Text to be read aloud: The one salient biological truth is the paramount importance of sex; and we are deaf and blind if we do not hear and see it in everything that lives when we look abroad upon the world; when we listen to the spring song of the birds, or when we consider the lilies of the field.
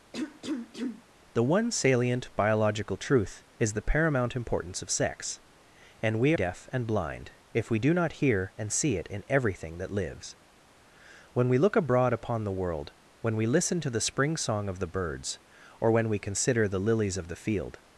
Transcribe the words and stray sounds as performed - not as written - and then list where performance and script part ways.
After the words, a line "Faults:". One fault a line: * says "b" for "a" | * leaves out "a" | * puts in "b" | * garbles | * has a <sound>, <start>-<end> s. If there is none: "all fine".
The one salient biological truth is the paramount importance of sex; and we deaf and blind if we do not hear and see it in everything that lives when we look abroad upon the world; when we listen to the spring song of the birds, or when we consider the lilies of the field.
Faults:
* has a cough, 0.1-1.0 s
* leaves out "are"